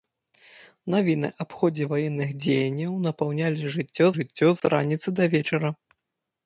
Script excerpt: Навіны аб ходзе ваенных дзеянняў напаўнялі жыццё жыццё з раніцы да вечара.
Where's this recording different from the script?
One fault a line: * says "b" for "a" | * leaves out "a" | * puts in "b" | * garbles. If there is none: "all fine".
all fine